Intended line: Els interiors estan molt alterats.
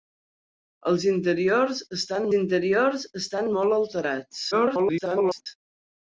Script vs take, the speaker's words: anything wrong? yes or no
yes